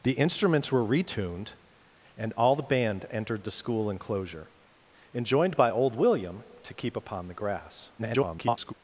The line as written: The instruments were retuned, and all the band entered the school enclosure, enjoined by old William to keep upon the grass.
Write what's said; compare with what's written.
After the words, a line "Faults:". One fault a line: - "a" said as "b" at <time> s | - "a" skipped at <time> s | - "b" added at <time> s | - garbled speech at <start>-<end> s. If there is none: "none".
The instruments were retuned, and all the band entered the school enclosure, enjoined by old William to keep upon the grass. [garbled]
Faults:
- garbled speech at 8.0-8.7 s